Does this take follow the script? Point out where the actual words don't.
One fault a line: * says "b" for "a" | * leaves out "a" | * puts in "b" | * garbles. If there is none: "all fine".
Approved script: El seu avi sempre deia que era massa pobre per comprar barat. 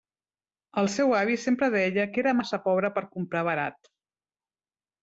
all fine